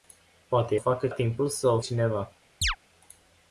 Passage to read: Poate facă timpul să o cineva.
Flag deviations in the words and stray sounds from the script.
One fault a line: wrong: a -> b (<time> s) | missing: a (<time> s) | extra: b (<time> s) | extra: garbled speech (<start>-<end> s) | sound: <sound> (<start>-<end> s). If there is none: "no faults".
sound: chirp (2.6-2.8 s)